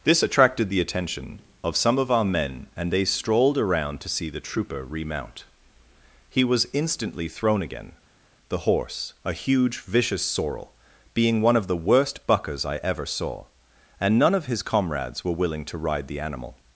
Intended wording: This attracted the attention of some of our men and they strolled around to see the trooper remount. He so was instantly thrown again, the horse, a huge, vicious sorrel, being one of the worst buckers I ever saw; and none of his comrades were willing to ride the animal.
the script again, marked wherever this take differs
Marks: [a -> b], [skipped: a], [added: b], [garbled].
This attracted the attention of some of our men and they strolled around to see the trooper remount. He [skipped: so] was instantly thrown again, the horse, a huge, vicious sorrel, being one of the worst buckers I ever saw; and none of his comrades were willing to ride the animal.